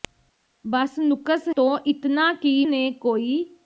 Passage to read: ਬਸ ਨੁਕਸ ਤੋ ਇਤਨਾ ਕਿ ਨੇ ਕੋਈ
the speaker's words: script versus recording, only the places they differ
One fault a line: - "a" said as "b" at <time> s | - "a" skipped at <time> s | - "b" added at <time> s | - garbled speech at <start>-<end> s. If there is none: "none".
none